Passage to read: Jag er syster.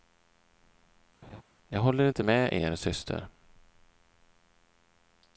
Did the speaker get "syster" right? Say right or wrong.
right